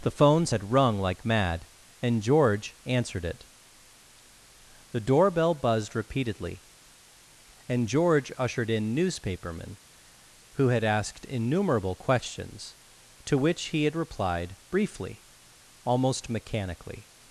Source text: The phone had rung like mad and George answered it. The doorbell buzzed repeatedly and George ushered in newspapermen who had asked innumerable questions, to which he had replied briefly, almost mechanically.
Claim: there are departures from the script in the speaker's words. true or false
true